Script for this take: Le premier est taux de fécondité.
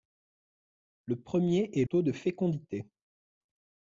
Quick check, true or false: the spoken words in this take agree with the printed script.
true